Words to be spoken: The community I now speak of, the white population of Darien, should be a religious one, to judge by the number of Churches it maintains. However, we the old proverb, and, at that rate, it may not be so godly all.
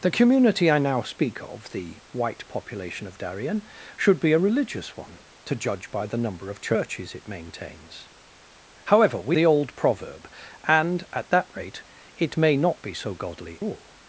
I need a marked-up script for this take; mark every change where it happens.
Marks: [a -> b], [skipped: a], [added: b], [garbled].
The community I now speak of, the white population of Darien, should be a religious one, to judge by the number of Churches it maintains. However, we the old proverb, and, at that rate, it may not be so godly all.